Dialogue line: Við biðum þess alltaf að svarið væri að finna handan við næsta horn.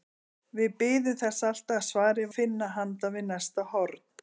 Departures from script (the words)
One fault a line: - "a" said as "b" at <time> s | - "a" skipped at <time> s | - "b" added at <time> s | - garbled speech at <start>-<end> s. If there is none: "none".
- "væri" skipped at 2.3 s